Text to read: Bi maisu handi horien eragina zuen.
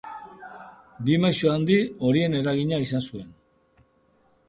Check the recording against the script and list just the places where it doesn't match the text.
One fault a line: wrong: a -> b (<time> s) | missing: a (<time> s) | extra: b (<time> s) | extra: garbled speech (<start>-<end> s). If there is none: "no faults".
extra: izan (2.9 s)